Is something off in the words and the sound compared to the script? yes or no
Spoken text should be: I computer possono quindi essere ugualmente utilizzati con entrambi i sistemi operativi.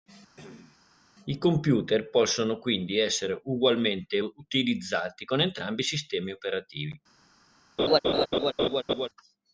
yes